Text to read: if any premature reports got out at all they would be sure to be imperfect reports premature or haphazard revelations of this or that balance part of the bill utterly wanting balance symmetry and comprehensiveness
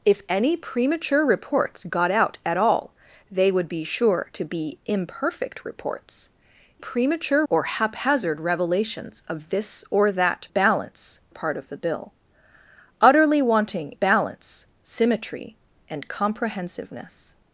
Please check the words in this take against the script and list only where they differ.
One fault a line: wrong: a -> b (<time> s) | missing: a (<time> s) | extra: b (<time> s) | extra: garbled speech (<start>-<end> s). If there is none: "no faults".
no faults